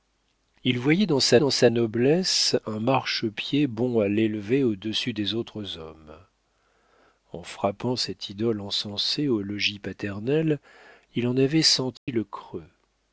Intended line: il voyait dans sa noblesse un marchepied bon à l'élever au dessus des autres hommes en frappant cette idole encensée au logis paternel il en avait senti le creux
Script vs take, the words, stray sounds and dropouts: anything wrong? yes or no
yes